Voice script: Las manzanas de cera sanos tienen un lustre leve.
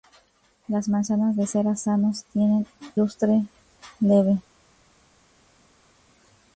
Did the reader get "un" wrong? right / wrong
wrong